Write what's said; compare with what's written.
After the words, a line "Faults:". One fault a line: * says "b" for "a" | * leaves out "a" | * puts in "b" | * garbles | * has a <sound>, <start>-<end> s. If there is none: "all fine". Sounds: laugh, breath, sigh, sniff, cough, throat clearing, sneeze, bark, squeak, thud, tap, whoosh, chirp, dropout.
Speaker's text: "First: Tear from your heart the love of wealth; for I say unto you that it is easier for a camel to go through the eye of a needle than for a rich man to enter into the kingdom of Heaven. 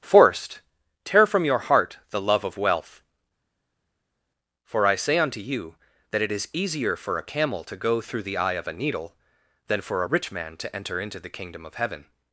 "Forced: Tear from your heart the love of wealth; for I say unto you that it is easier for a camel to go through the eye of a needle than for a rich man to enter into the kingdom of Heaven.
Faults:
* says "Forced" for "First"